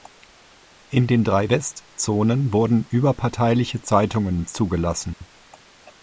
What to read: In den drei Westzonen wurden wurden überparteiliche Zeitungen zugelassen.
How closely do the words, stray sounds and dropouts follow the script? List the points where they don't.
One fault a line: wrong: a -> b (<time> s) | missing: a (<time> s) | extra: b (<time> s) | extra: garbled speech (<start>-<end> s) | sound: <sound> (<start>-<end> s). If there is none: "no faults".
missing: wurden (2.8 s)
sound: dropout (5.1-5.2 s)